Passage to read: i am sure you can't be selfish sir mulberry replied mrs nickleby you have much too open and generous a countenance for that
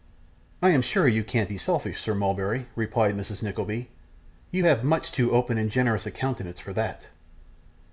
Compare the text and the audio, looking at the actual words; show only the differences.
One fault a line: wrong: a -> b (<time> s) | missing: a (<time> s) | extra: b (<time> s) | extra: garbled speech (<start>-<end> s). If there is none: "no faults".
no faults